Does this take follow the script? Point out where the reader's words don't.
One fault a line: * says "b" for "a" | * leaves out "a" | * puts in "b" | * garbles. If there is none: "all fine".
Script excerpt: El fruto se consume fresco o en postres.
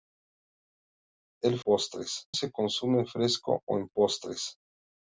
* says "postres" for "fruto"